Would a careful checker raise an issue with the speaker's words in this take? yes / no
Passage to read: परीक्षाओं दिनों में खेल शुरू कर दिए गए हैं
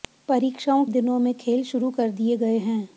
no